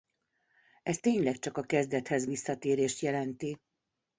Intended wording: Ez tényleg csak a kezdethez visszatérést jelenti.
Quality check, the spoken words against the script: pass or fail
pass